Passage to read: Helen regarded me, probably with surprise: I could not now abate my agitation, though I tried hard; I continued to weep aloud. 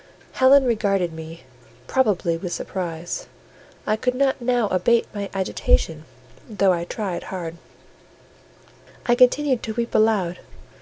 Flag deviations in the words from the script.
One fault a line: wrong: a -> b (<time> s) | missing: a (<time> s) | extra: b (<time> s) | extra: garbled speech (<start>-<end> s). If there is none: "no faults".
no faults